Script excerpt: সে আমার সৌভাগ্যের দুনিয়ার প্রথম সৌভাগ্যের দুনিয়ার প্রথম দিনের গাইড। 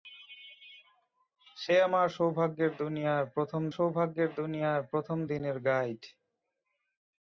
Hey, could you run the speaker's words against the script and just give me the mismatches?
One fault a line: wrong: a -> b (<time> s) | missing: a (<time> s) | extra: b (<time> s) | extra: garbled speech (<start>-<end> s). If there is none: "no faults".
no faults